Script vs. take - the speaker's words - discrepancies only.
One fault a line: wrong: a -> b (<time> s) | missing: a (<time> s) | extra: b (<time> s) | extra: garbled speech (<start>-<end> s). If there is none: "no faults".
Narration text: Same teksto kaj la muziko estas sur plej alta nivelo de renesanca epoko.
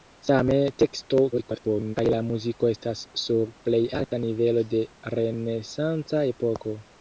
extra: garbled speech (1.3-2.0 s)